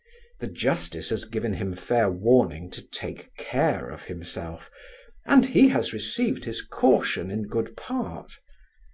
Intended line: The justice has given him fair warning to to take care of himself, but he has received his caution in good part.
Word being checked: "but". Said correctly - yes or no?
no